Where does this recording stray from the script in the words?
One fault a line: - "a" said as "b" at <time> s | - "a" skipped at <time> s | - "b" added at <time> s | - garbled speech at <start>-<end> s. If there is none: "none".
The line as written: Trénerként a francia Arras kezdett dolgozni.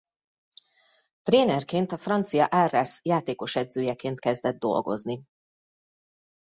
- "játékosedzőjeként" added at 3.0 s